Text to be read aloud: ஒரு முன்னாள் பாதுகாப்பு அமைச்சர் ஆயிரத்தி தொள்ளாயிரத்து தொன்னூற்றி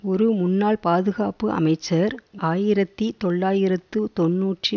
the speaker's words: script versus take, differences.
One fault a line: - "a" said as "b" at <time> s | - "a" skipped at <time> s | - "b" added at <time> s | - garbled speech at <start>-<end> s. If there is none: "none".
none